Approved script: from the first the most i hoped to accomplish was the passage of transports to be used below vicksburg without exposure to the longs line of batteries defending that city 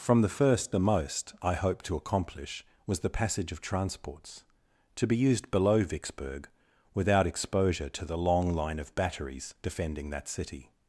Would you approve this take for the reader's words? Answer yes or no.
no